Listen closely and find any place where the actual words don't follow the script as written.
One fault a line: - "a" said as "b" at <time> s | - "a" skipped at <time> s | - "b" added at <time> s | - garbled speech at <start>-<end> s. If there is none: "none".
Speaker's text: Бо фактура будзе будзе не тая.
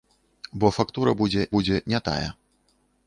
none